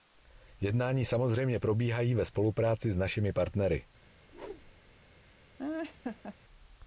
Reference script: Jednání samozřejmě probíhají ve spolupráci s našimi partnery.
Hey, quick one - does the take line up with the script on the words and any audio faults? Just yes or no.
no